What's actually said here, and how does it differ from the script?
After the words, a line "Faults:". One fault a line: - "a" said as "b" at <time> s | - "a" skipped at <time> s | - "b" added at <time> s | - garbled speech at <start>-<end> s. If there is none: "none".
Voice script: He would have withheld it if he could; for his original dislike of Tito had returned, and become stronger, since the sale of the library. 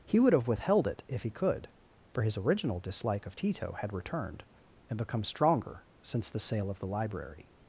He would have withheld it if he could; for his original dislike of Tito had returned, and become stronger, since the sale of the library.
Faults:
none